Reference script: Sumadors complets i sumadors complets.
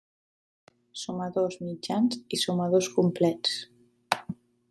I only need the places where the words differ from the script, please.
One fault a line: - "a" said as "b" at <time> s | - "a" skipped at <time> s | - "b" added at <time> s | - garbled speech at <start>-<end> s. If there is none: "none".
- "complets" said as "mitjans" at 1.6 s